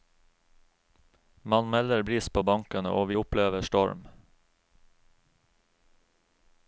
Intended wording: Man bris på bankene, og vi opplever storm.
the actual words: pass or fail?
fail